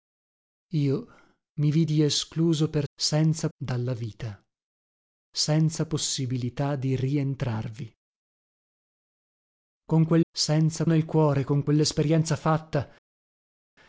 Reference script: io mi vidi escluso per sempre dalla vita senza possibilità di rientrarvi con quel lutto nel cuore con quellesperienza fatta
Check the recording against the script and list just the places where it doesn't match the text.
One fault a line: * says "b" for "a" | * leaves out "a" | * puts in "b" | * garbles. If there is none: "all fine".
* says "senza" for "sempre"
* says "senza" for "lutto"